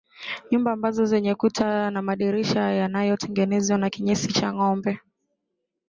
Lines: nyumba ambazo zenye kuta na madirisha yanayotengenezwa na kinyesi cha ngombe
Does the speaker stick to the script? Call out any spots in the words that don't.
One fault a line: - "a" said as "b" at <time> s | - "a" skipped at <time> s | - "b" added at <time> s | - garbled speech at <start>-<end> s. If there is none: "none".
none